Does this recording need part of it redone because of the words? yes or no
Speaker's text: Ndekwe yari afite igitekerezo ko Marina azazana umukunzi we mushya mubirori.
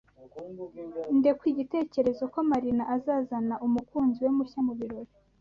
yes